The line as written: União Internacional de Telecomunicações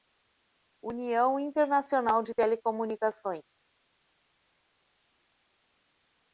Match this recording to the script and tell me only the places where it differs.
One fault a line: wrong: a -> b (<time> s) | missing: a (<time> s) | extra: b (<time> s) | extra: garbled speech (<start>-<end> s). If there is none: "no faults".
no faults